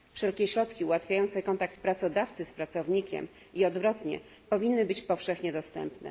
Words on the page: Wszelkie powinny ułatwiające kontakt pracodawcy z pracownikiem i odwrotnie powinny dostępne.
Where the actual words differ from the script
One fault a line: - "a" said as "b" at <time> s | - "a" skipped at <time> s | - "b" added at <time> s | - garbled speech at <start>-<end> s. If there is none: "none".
- "powinny" said as "środki" at 0.4 s
- "być powszechnie" added at 4.9 s